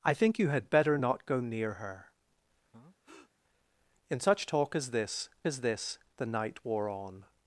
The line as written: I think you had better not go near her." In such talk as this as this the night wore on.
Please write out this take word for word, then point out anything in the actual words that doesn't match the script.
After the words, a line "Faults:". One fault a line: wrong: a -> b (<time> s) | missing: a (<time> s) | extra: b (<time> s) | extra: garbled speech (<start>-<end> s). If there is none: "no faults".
I think you had better not go near her." In such talk as this as this the night wore on.
Faults:
no faults